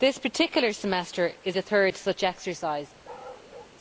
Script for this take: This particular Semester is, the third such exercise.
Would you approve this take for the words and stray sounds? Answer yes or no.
no